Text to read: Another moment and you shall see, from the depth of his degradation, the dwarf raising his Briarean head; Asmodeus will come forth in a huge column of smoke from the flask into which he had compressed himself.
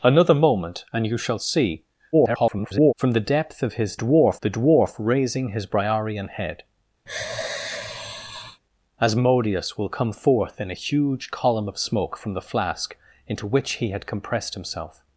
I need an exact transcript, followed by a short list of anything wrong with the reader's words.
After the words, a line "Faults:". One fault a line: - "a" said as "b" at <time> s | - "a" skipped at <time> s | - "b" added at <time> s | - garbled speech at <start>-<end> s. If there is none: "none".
Another moment and you shall see, [garbled] from the depth of his dwarf, the dwarf raising his Briarean head; Asmodeus will come forth in a huge column of smoke from the flask into which he had compressed himself.
Faults:
- garbled speech at 2.1-2.9 s
- "degradation" said as "dwarf" at 3.9 s